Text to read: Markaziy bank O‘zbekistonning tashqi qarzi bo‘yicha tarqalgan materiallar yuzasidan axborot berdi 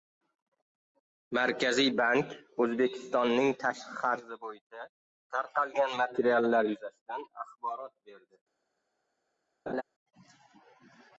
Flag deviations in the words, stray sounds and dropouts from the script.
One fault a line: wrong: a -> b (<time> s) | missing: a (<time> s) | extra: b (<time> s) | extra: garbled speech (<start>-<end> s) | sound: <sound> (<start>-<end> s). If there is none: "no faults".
sound: laugh (9.7-9.8 s)